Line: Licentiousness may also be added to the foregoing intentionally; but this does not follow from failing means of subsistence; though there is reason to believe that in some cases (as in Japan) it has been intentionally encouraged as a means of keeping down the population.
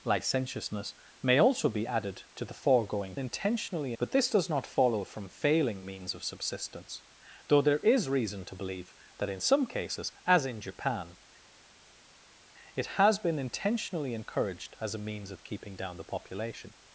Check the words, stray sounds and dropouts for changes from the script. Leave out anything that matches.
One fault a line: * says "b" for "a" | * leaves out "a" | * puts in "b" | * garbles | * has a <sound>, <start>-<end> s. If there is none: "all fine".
all fine